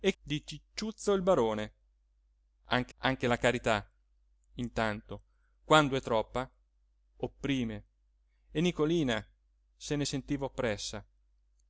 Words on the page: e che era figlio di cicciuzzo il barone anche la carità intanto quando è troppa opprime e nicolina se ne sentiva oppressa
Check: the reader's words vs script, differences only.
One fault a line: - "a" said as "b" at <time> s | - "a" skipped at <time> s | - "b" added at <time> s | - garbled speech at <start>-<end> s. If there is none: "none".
- "che era figlio" skipped at 0.1 s
- "anche" added at 3.0 s